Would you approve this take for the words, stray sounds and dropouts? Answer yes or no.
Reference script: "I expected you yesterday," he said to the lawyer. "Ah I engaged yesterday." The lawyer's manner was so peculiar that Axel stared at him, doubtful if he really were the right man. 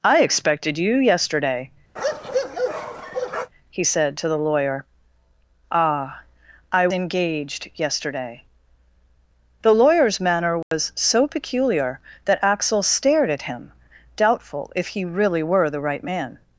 no